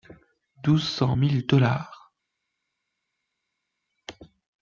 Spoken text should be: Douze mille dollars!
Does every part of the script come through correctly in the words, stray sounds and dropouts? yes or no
no